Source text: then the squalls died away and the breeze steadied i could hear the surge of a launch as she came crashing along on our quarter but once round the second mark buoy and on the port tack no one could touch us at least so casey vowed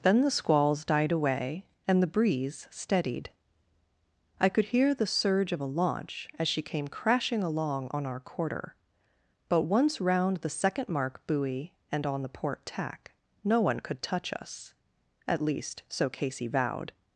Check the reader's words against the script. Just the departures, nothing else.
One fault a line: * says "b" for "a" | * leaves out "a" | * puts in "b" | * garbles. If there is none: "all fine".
all fine